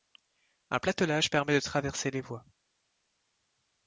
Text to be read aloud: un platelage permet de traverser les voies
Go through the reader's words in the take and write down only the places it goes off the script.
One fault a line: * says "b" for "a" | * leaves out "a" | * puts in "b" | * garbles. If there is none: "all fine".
all fine